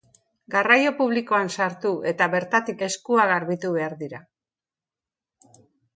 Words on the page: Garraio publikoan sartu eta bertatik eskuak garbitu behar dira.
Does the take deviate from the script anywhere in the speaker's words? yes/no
no